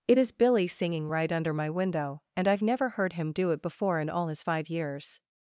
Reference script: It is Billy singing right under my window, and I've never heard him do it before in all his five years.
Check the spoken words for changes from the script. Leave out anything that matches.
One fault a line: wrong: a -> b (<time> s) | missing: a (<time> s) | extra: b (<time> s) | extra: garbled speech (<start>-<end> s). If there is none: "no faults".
no faults